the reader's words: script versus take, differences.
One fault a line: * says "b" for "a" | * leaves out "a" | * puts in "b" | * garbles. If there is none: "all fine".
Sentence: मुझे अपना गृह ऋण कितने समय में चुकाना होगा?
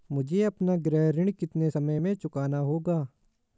all fine